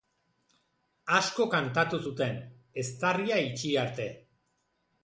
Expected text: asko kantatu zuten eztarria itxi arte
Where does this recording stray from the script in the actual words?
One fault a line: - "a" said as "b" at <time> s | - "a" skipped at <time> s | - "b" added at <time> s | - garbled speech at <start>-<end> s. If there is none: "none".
none